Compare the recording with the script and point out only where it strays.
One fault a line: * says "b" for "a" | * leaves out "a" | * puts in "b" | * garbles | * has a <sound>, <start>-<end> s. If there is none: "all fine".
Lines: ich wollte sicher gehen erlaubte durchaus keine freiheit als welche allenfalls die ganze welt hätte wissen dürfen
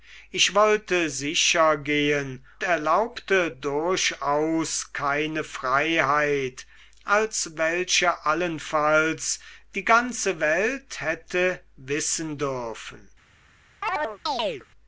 * has a chirp, 13.8-14.7 s